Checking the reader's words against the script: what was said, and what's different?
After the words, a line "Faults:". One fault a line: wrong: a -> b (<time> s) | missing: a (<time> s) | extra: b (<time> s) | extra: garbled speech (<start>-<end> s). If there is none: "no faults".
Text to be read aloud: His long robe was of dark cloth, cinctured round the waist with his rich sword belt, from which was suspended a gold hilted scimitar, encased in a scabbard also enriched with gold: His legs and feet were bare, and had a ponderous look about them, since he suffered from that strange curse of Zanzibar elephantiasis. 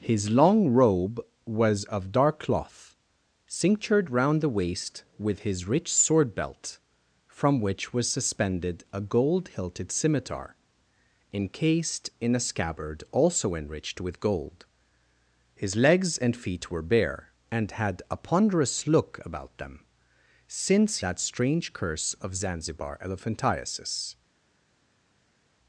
His long robe was of dark cloth, cinctured round the waist with his rich sword belt, from which was suspended a gold hilted scimitar, encased in a scabbard also enriched with gold: His legs and feet were bare, and had a ponderous look about them, since that strange curse of Zanzibar elephantiasis.
Faults:
missing: he suffered from (21.0 s)